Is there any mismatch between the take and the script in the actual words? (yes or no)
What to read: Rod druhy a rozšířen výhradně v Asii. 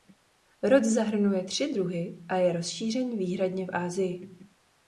yes